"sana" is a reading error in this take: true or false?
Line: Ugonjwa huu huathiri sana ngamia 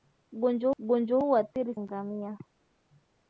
true